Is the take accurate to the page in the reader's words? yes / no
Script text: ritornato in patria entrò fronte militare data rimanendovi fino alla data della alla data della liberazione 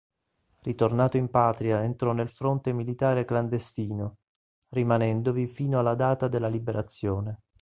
no